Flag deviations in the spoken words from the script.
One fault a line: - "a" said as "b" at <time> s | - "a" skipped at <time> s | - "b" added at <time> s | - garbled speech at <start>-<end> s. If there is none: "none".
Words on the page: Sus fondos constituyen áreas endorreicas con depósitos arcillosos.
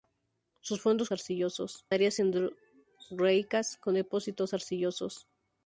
- "constituyen" said as "arcillosos" at 1.1 s